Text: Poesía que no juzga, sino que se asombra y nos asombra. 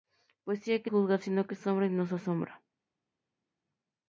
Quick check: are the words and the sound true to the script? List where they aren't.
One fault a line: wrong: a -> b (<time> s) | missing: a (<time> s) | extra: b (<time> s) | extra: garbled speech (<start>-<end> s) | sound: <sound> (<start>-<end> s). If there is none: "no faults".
missing: no (0.9 s)
missing: se (1.5 s)